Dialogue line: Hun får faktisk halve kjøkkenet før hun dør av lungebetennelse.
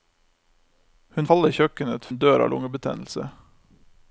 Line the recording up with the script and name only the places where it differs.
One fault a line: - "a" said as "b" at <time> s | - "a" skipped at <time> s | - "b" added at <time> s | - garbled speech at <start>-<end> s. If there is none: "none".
- "får faktisk" skipped at 1.3 s
- "før" skipped at 2.1 s